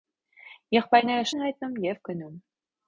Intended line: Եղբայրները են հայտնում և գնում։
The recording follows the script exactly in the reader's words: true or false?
true